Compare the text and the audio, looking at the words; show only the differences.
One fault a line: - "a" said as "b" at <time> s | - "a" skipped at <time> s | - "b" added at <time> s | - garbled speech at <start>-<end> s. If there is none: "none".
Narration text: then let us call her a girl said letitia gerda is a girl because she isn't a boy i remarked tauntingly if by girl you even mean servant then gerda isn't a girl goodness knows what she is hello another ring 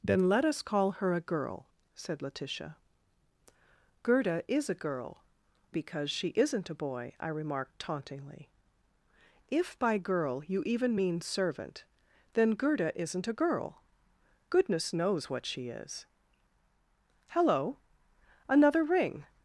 none